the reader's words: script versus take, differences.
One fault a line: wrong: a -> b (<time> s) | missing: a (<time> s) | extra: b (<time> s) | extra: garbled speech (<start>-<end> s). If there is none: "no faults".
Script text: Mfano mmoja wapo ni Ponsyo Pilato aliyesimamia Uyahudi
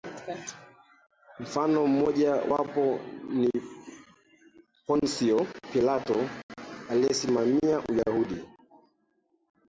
no faults